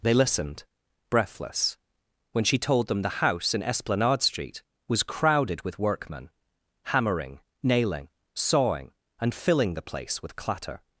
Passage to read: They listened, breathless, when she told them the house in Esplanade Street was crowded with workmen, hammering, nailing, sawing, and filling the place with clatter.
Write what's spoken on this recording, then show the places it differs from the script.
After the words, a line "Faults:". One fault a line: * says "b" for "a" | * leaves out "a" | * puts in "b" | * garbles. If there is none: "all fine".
They listened, breathless, when she told them the house in Esplanade Street was crowded with workmen, hammering, nailing, sawing, and filling the place with clatter.
Faults:
all fine